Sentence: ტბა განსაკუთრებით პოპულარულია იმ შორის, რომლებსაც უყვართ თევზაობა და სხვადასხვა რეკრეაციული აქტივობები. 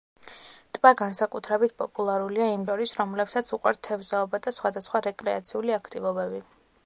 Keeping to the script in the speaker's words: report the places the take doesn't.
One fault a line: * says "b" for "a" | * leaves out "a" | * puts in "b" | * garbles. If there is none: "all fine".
all fine